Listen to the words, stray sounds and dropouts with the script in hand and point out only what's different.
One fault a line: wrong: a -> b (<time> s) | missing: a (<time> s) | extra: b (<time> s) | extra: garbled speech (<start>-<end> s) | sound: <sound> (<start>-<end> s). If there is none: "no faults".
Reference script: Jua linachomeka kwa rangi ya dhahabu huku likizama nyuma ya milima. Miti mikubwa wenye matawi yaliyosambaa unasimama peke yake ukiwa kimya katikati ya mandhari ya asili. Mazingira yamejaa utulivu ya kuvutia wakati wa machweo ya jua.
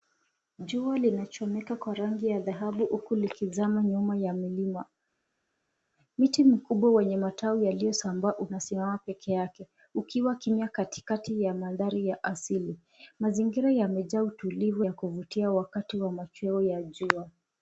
no faults